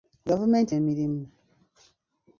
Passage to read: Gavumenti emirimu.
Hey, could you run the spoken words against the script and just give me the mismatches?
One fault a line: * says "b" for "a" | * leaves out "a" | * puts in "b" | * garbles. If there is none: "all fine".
all fine